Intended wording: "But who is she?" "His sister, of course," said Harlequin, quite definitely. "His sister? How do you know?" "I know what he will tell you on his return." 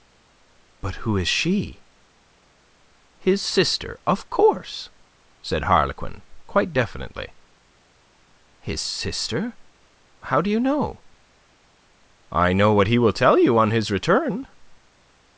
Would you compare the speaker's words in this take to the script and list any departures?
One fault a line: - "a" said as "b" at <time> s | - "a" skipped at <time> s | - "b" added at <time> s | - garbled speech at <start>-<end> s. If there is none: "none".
none